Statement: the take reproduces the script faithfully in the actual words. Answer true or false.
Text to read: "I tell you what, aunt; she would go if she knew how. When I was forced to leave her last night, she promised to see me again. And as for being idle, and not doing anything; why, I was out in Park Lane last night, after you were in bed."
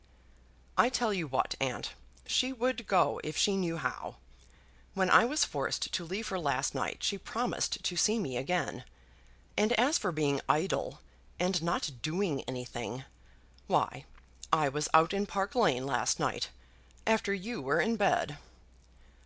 true